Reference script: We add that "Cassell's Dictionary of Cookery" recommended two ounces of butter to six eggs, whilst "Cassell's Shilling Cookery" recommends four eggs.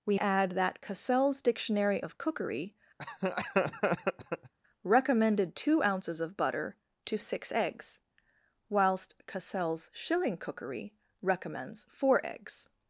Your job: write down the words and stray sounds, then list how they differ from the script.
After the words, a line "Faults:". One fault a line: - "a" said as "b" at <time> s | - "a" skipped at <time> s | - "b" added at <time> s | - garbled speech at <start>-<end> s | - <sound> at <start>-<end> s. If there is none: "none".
We add that "Cassell's Dictionary of Cookery" recommended two ounces of butter to six eggs, whilst "Cassell's Shilling Cookery" recommends four eggs.
Faults:
- laugh at 3.0-4.5 s